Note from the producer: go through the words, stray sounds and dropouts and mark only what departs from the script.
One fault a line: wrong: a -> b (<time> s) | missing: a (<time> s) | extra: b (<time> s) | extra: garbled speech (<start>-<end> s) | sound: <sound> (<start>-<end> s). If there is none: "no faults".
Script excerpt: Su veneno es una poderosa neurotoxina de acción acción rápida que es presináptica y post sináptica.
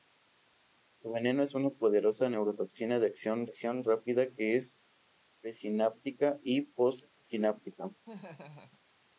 sound: laugh (8.0-8.8 s)